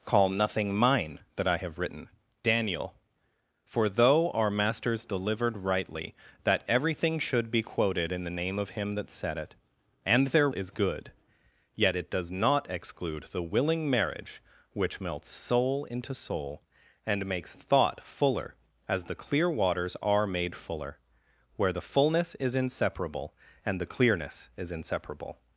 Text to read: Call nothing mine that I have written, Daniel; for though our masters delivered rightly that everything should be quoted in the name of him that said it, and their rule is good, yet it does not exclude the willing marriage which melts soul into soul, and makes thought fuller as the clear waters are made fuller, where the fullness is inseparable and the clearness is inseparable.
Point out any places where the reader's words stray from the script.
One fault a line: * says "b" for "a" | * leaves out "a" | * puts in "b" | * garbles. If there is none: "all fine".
* leaves out "rule"